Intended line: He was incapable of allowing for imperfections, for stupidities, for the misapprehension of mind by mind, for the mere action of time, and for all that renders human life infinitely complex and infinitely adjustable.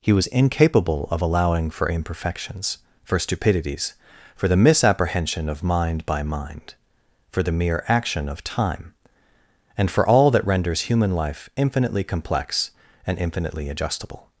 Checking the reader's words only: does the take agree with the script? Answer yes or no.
yes